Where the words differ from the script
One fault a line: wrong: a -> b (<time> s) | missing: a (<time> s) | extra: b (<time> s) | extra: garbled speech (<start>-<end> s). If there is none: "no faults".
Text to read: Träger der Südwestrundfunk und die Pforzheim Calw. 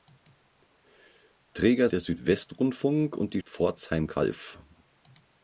no faults